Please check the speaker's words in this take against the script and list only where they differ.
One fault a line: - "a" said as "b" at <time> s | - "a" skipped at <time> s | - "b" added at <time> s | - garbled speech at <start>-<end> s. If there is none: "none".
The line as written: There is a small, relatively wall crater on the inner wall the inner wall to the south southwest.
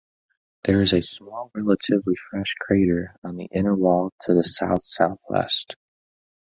- "wall" said as "fresh" at 2.3 s
- "the inner wall" skipped at 4.1 s